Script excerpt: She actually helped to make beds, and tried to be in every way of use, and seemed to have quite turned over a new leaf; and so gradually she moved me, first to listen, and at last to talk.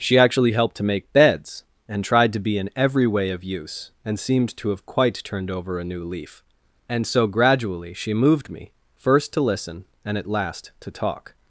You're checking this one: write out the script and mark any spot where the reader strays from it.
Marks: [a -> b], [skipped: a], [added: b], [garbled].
She actually helped to make beds, and tried to be in every way of use, and seemed to have quite turned over a new leaf; and so gradually she moved me, first to listen, and at last to talk.